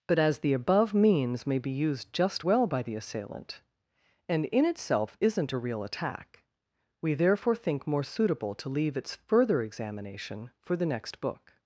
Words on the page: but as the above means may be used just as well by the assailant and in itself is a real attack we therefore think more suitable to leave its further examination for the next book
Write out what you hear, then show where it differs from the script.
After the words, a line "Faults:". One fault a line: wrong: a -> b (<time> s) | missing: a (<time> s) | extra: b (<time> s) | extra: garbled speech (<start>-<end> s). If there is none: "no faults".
but as the above means may be used just well by the assailant and in itself isn't a real attack we therefore think more suitable to leave its further examination for the next book
Faults:
missing: as (2.5 s)
wrong: is -> isn't (5.2 s)